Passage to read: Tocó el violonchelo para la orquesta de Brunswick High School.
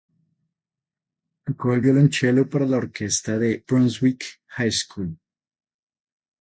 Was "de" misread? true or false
false